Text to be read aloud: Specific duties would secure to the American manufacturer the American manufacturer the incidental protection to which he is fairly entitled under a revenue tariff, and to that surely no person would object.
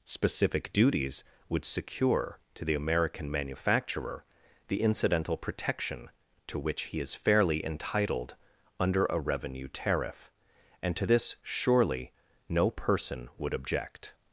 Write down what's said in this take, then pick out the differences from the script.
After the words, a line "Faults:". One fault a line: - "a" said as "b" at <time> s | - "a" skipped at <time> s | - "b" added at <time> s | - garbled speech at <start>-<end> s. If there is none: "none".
Specific duties would secure to the American manufacturer the incidental protection to which he is fairly entitled under a revenue tariff, and to this surely no person would object.
Faults:
- "American manufacturer the" skipped at 4.8 s
- "that" said as "this" at 11.0 s